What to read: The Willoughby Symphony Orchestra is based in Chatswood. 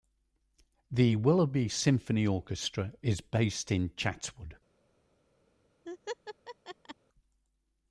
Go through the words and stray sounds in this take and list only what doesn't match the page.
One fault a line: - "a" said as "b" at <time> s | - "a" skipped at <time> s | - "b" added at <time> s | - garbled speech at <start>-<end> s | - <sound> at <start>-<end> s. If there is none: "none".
- laugh at 5.9-7.0 s